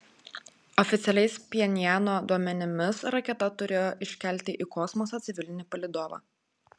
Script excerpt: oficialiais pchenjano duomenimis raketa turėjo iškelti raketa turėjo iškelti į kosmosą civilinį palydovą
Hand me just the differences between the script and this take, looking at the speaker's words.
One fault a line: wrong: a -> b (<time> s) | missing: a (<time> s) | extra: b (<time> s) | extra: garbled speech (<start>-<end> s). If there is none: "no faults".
missing: raketa turėjo iškelti (4.6 s)